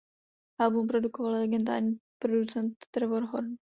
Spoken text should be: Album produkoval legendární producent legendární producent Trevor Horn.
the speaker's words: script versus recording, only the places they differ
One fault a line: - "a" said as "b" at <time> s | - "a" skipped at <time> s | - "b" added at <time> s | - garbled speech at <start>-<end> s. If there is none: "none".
- "legendární producent" skipped at 2.8 s